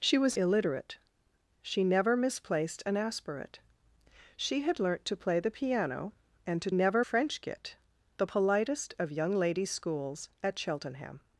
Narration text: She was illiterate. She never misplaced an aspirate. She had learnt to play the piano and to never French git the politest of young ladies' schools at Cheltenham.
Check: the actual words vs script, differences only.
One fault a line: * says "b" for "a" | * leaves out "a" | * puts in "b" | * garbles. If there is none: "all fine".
all fine